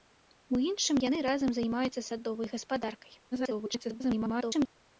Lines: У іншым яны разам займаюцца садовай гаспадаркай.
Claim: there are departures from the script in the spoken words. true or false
true